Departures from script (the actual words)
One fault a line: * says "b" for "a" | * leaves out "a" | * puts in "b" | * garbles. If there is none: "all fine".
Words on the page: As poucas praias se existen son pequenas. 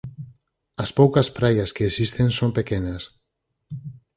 * says "que" for "se"